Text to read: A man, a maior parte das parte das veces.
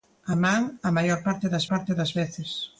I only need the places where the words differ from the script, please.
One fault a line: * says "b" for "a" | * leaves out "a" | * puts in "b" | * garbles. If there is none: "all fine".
all fine